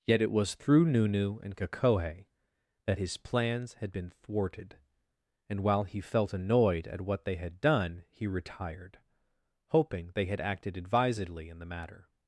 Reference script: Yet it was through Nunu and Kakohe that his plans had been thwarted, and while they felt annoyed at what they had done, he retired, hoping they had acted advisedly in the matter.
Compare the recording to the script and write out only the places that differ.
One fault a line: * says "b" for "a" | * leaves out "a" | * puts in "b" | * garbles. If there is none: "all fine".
* says "he" for "they"